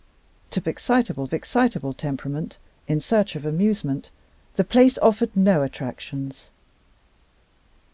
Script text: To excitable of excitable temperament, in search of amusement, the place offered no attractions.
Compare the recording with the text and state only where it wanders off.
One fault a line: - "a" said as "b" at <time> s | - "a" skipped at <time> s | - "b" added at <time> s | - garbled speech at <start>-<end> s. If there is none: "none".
none